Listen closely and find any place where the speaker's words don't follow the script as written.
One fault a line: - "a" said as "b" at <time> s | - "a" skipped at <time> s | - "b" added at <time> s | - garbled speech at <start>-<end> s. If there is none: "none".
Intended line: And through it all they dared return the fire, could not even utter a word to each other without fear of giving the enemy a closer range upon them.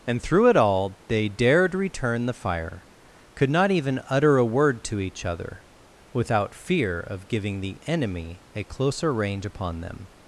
none